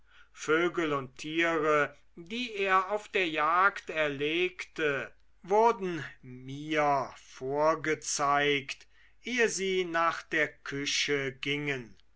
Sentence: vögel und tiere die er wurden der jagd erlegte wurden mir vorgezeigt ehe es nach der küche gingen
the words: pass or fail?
fail